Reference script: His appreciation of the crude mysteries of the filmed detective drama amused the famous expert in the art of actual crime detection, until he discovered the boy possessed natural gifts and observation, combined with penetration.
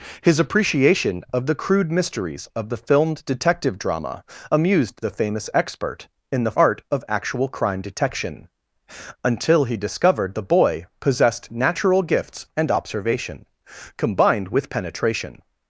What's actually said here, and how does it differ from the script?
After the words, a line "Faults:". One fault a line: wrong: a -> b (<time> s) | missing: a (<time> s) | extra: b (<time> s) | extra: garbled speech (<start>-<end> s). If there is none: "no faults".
His appreciation of the crude mysteries of the filmed detective drama amused the famous expert in the art of actual crime detection, until he discovered the boy possessed natural gifts and observation, combined with penetration.
Faults:
no faults